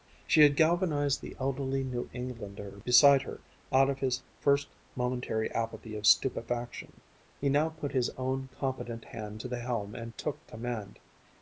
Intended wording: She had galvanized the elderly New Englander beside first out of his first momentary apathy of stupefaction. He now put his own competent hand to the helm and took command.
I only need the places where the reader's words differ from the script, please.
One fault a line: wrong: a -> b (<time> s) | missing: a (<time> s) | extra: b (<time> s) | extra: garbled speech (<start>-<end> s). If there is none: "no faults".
wrong: first -> her (3.2 s)